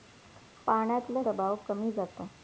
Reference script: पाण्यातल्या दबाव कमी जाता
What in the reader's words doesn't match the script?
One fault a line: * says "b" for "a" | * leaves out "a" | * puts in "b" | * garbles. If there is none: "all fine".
all fine